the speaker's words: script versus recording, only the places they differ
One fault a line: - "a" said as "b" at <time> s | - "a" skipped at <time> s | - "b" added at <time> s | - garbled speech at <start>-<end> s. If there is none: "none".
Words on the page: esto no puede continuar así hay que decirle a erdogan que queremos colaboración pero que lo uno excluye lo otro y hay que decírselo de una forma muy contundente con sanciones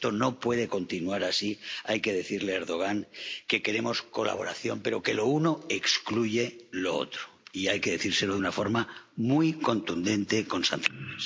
none